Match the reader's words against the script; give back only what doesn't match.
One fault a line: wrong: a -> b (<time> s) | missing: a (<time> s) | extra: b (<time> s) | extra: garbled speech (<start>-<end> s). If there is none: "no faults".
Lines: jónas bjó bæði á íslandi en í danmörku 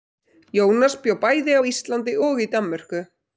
wrong: en -> og (2.3 s)